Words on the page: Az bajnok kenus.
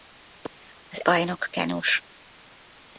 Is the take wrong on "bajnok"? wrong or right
right